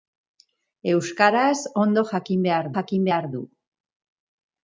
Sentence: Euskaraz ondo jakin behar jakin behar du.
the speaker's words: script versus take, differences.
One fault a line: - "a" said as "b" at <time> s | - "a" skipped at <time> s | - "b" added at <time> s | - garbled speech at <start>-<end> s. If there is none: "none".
none